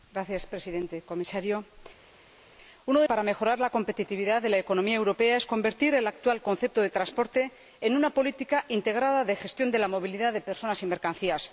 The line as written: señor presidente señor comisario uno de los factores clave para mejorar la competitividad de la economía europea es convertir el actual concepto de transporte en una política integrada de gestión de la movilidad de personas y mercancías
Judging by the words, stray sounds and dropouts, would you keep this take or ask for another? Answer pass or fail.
fail